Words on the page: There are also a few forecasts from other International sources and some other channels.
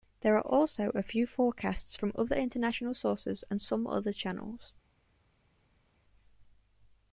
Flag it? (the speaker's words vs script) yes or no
no